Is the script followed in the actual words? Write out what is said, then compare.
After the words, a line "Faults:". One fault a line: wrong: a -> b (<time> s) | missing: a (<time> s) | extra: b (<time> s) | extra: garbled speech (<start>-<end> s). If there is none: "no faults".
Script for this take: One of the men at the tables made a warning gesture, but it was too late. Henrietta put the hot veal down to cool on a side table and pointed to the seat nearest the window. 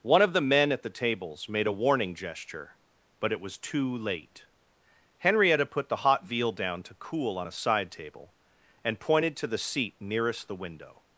One of the men at the tables made a warning gesture, but it was too late. Henrietta put the hot veal down to cool on a side table and pointed to the seat nearest the window.
Faults:
no faults